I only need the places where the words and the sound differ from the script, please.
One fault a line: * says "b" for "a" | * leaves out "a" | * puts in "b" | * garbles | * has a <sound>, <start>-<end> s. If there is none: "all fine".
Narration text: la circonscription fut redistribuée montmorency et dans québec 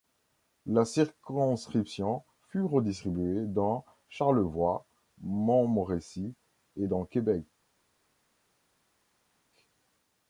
* puts in "dans charlevoix"